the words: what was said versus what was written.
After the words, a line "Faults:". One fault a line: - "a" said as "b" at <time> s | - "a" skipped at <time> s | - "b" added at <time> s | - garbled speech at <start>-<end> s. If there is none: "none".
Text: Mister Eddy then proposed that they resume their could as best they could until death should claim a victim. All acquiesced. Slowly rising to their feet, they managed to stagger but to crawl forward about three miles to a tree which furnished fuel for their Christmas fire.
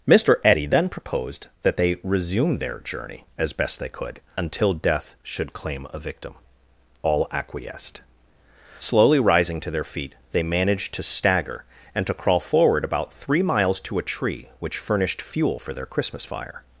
Mister Eddy then proposed that they resume their journey as best they could until death should claim a victim. All acquiesced. Slowly rising to their feet, they managed to stagger and to crawl forward about three miles to a tree which furnished fuel for their Christmas fire.
Faults:
- "could" said as "journey" at 2.8 s
- "but" said as "and" at 11.9 s